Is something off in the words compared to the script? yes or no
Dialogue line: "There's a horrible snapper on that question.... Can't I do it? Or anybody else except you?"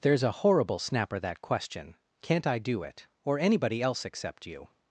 yes